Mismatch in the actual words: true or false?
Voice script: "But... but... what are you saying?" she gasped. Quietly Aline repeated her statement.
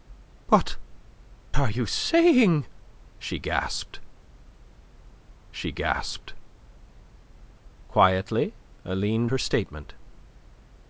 true